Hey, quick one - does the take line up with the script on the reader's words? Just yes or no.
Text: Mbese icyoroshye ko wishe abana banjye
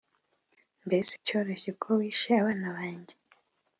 yes